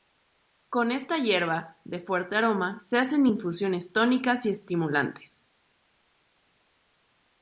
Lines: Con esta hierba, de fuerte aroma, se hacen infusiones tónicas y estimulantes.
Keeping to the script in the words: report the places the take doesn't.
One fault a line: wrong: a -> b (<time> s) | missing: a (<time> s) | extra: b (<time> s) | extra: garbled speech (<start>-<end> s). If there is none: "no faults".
no faults